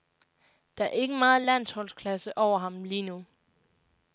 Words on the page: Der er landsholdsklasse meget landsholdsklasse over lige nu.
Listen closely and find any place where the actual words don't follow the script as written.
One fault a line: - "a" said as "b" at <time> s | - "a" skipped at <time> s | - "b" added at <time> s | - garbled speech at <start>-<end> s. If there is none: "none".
- "landsholdsklasse" said as "ikke" at 0.9 s
- "ham" added at 2.6 s